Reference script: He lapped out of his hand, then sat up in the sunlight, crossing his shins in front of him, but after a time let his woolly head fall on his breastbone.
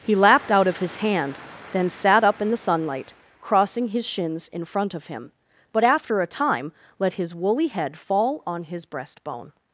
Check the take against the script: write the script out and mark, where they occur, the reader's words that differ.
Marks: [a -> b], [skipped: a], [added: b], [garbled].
He lapped out of his hand, then sat up in the sunlight, crossing his shins in front of him, but after a time let his woolly head fall on his breastbone.